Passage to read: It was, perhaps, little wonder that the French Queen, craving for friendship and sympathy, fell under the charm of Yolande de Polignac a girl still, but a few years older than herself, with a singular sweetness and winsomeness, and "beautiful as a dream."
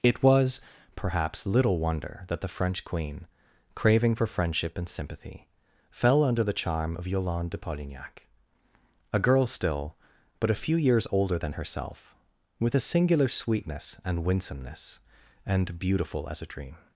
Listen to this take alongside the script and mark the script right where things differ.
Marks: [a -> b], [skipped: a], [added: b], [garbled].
It was, perhaps, little wonder that the French Queen, craving for friendship and sympathy, fell under the charm of Yolande de Polignac a girl still, but a few years older than herself, with a singular sweetness and winsomeness, and "beautiful as a dream."